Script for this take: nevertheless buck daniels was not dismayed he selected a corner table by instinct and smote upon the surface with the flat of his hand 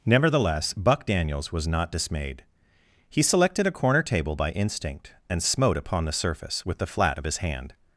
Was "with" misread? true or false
false